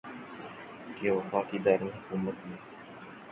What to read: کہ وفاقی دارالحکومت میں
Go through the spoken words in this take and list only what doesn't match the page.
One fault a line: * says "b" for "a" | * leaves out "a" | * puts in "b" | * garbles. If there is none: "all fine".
all fine